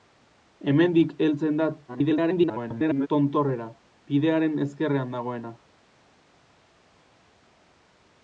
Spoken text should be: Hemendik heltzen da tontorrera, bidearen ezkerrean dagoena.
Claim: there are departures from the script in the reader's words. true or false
true